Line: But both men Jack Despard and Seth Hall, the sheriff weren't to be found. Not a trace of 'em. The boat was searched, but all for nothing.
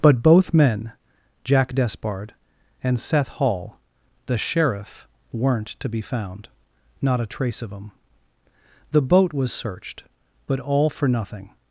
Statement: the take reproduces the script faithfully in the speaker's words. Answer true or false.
true